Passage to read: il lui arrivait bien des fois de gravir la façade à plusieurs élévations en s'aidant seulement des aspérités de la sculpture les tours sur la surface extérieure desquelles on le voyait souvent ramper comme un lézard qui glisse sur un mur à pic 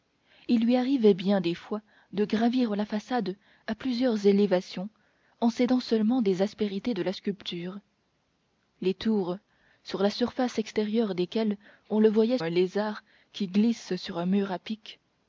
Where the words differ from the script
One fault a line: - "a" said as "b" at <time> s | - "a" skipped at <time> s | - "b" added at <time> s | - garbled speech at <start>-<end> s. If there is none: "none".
- "souvent ramper comme" skipped at 12.4 s